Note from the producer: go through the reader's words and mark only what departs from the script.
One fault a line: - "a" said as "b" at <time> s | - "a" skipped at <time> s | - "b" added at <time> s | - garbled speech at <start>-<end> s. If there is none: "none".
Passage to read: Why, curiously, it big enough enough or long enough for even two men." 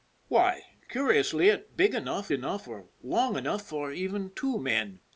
none